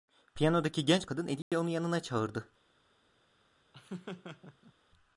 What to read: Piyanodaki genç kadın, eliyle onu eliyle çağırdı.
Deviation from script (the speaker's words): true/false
true